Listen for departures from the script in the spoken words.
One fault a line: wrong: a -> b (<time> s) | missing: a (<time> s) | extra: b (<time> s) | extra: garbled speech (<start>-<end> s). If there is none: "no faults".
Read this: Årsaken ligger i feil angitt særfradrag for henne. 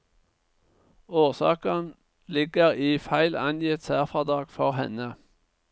no faults